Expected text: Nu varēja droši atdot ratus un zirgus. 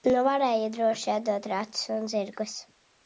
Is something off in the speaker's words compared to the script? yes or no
no